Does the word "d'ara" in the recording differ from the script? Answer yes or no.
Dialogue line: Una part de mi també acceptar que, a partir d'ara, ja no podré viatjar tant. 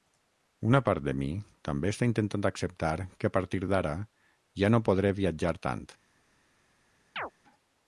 no